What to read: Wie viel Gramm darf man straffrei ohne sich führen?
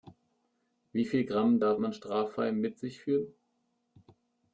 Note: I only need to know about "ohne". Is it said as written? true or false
false